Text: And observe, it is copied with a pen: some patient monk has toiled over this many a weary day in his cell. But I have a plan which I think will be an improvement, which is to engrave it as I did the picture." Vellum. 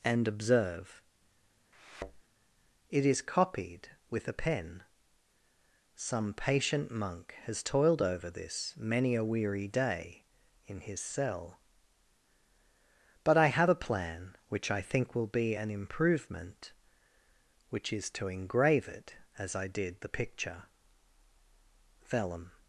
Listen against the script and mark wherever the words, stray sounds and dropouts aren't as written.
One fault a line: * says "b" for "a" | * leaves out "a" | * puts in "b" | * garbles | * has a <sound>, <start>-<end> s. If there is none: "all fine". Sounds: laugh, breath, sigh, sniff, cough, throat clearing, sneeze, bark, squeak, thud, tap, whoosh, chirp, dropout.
* has a thud, 1.7-2.2 s